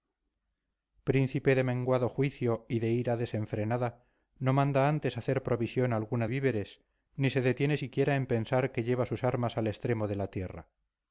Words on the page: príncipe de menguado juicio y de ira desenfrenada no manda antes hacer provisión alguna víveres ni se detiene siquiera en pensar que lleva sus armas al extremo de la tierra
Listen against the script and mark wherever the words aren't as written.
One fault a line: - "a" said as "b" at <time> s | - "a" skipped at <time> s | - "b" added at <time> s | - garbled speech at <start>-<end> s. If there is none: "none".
none